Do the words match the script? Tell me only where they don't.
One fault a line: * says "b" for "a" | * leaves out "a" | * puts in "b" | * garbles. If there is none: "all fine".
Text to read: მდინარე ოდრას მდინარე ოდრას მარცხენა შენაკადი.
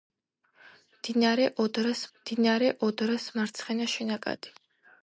all fine